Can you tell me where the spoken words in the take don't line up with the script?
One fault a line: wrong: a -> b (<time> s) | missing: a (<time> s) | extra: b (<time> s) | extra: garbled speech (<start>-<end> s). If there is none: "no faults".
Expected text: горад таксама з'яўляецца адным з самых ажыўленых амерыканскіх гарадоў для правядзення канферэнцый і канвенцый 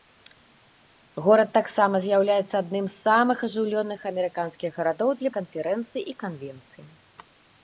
missing: правядзення (5.3 s)